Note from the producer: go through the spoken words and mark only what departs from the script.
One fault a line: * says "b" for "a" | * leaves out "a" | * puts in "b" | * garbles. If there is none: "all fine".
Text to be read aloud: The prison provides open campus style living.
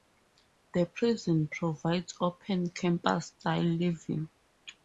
all fine